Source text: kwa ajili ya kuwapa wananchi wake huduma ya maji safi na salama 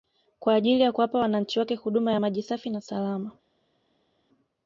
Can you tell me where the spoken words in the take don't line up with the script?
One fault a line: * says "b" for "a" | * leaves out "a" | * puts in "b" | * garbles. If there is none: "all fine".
all fine